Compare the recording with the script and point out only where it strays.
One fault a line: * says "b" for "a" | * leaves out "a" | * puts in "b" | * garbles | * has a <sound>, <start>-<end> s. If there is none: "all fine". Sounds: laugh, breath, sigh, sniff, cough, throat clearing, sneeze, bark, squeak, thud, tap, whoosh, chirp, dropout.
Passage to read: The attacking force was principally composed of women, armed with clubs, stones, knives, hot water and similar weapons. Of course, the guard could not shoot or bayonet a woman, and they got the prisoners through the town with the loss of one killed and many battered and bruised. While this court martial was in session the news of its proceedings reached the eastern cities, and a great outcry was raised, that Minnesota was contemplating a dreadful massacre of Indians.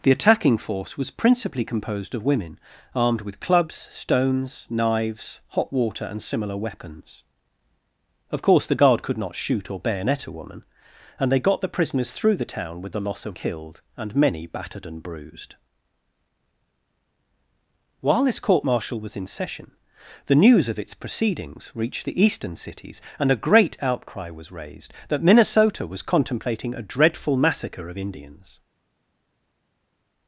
* leaves out "one"